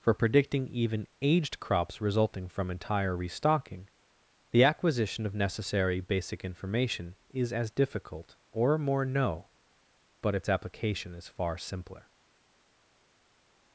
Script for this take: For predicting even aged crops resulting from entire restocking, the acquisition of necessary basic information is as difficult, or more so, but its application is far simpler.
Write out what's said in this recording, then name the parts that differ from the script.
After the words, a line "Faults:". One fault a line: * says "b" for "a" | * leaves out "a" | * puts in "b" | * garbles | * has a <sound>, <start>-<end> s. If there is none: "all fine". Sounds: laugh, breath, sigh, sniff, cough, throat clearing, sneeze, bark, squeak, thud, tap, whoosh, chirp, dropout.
For predicting even aged crops resulting from entire restocking, the acquisition of necessary basic information is as difficult, or more no, but its application is far simpler.
Faults:
* says "no" for "so"